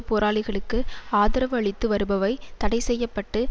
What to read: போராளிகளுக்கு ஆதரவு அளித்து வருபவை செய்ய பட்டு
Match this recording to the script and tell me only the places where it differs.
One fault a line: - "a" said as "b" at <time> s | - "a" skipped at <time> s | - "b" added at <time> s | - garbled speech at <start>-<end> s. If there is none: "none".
- "தடை" added at 2.6 s